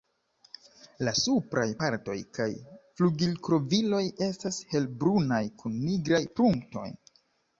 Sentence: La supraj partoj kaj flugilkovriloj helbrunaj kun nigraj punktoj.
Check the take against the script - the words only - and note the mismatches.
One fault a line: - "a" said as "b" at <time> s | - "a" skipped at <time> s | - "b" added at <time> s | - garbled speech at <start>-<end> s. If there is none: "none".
- "estas" added at 4.3 s